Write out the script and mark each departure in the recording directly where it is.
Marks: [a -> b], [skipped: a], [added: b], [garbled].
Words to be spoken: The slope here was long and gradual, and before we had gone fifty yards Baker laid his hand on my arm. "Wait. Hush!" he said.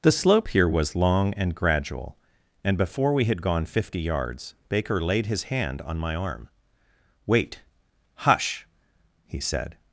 The slope here was long and gradual, and before we had gone fifty yards Baker laid his hand on my arm. "Wait. Hush!" he said.